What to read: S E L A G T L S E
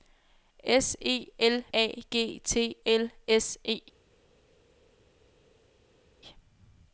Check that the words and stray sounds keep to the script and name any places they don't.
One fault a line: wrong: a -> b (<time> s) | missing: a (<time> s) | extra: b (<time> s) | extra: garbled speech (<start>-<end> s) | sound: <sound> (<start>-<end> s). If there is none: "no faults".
no faults